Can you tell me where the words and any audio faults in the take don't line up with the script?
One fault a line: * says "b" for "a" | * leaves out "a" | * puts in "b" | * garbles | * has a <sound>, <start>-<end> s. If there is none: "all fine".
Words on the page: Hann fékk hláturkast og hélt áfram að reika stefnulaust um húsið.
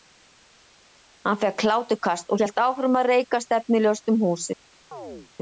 * has a chirp, 4.9-5.3 s